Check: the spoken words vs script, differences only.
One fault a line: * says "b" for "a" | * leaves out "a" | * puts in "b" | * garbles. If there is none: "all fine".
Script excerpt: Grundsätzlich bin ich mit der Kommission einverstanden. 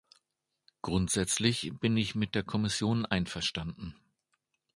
all fine